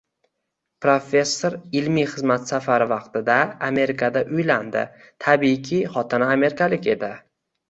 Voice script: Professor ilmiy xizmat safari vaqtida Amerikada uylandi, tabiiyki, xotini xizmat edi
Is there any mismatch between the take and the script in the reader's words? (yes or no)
yes